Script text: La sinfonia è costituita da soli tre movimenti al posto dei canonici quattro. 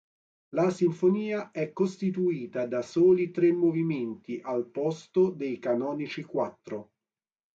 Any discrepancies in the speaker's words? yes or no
no